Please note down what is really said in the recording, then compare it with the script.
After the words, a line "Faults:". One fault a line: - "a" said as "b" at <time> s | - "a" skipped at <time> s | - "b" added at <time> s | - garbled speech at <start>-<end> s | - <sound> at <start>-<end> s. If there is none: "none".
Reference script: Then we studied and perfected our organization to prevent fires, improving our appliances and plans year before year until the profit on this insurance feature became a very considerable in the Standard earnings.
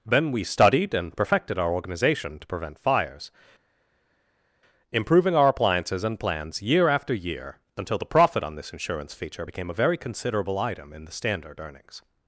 Then we studied and perfected our organization to prevent fires, improving our appliances and plans year after year until the profit on this insurance feature became a very considerable item in the Standard earnings.
Faults:
- "before" said as "after" at 6.9 s
- "item" added at 10.6 s